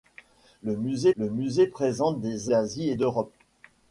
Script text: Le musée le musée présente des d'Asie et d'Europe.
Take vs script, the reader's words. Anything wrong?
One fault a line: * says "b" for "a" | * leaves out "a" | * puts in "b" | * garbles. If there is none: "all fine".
all fine